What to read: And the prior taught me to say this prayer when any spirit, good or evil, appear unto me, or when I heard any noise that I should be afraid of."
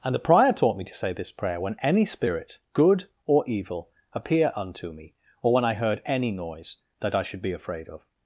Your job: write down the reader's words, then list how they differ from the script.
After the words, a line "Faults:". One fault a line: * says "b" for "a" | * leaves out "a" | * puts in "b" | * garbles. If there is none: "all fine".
And the prior taught me to say this prayer when any spirit, good or evil, appear unto me, or when I heard any noise that I should be afraid of."
Faults:
all fine